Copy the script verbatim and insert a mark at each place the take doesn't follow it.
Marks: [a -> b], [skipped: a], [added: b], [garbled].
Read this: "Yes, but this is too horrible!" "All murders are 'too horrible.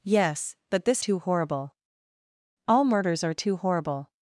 "Yes, but this [skipped: is] too horrible!" "All murders are 'too horrible.